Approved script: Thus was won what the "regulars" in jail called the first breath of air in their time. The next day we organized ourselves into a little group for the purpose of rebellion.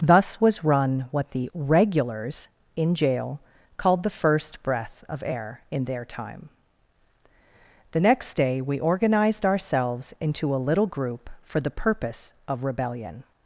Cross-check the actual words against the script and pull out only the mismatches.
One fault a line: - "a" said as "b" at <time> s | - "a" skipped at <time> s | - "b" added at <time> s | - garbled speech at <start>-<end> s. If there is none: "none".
- "won" said as "run" at 0.6 s